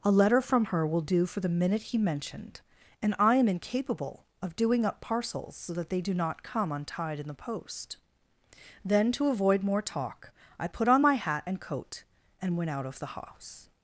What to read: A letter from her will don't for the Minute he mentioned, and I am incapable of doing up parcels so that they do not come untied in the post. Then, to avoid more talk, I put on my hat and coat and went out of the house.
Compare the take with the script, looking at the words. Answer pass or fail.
fail